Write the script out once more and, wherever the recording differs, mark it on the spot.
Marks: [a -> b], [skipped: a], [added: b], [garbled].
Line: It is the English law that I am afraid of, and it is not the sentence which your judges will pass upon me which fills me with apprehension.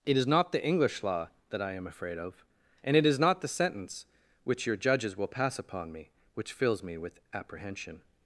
It is [added: not] the English law that I am afraid of, and it is not the sentence which your judges will pass upon me which fills me with apprehension.